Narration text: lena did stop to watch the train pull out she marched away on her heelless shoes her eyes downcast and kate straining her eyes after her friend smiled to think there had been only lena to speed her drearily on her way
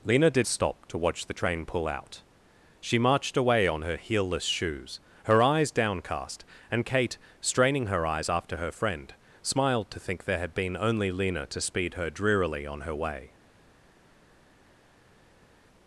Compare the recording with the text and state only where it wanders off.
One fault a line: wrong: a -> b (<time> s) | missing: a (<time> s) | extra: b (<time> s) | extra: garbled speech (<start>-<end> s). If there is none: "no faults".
no faults